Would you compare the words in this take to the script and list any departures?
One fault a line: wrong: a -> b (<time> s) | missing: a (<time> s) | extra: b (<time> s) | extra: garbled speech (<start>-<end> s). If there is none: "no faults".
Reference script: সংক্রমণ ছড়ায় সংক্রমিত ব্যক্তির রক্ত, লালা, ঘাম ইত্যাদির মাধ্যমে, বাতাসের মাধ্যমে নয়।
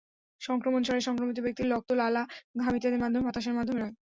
no faults